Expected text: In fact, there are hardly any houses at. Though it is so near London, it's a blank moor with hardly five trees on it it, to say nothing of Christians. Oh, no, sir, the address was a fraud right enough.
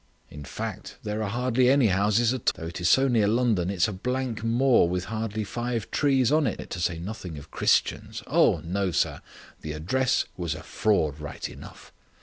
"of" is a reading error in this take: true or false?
false